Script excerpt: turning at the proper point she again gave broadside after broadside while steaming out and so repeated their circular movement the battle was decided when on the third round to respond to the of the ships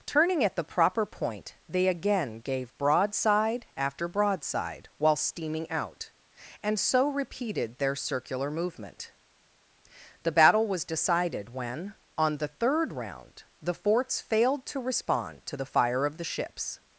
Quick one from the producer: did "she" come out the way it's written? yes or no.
no